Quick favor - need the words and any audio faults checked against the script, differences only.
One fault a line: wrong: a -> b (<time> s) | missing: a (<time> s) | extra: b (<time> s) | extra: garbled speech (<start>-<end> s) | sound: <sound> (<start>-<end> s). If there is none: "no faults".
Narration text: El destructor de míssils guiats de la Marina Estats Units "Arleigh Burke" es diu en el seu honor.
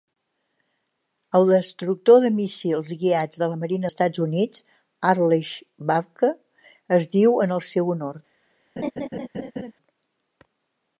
sound: laugh (8.8-9.7 s)